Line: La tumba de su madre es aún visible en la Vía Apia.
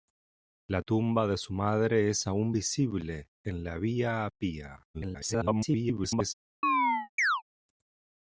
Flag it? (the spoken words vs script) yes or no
yes